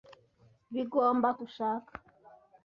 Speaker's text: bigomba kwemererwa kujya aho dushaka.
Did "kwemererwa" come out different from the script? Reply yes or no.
yes